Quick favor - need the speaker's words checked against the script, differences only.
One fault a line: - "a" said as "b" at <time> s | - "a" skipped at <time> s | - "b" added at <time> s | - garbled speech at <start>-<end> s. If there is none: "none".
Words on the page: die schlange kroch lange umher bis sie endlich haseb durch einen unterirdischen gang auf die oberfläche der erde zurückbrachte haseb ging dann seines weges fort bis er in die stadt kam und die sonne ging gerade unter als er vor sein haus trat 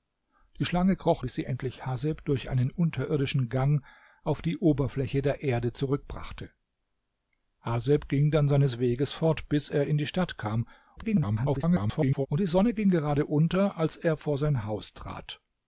- "lange umher" skipped at 1.2 s
- garbled speech at 11.0-12.3 s